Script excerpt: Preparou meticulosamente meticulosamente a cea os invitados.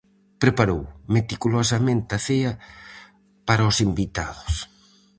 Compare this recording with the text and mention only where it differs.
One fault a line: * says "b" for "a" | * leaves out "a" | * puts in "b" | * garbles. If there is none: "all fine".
* leaves out "meticulosamente"
* puts in "para"